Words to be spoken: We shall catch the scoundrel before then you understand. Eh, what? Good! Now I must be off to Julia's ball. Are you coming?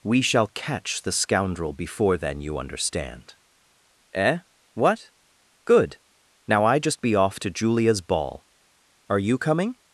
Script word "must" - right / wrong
wrong